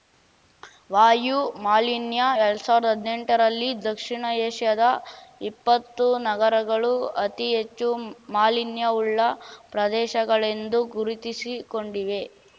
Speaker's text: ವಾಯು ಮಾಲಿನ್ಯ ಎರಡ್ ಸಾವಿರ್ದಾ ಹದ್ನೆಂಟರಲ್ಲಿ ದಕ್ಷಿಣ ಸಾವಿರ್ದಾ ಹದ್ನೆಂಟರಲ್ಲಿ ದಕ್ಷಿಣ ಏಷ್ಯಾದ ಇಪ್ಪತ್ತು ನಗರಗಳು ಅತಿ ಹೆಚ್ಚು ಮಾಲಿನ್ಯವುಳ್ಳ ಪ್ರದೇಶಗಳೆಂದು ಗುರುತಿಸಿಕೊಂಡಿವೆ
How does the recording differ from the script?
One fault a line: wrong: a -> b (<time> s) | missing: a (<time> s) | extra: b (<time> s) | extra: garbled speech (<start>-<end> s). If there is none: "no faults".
missing: ಸಾವಿರ್ದಾ ಹದ್ನೆಂಟರಲ್ಲಿ ದಕ್ಷಿಣ (4.2 s)